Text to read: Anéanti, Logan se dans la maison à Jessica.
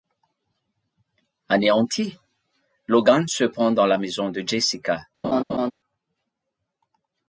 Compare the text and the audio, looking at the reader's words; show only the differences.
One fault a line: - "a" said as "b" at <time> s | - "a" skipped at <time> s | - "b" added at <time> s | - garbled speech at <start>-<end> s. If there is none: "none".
- "pend" added at 3.4 s
- "à" said as "de" at 4.3 s